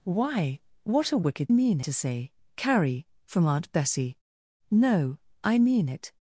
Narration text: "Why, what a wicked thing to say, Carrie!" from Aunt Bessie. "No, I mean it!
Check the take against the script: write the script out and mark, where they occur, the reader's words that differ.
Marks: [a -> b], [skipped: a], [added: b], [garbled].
"Why, what a wicked [thing -> mean] to say, Carrie!" from Aunt Bessie. "No, I mean it!